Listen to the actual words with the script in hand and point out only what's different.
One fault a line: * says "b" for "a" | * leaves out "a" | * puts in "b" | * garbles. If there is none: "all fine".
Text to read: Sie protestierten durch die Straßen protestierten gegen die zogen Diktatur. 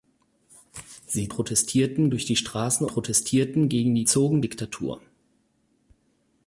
all fine